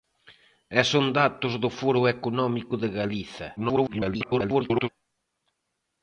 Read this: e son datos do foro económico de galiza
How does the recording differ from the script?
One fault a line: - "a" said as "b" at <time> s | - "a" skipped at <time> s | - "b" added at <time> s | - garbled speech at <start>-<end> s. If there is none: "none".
- garbled speech at 3.6-4.9 s